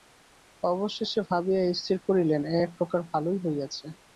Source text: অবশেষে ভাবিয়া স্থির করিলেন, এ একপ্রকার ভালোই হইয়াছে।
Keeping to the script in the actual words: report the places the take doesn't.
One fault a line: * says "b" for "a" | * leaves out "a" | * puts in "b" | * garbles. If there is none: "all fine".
all fine